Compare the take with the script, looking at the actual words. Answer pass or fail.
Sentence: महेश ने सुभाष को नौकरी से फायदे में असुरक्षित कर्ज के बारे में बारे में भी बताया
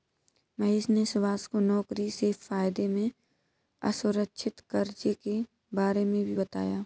fail